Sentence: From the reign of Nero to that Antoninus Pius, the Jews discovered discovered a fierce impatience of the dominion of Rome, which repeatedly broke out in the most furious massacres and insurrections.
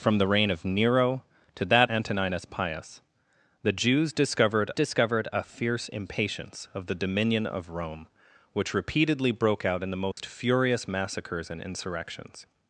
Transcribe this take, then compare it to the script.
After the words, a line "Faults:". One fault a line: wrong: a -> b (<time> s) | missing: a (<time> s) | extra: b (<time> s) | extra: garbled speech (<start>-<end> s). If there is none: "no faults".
From the reign of Nero to that Antoninus Pius, the Jews discovered discovered a fierce impatience of the dominion of Rome, which repeatedly broke out in the most furious massacres and insurrections.
Faults:
no faults